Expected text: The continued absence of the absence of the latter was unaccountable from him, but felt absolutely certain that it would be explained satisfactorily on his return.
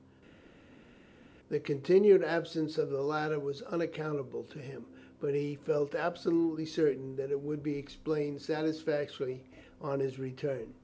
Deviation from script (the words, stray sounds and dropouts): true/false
true